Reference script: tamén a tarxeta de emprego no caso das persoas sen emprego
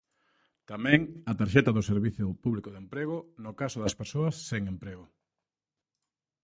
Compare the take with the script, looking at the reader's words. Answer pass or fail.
fail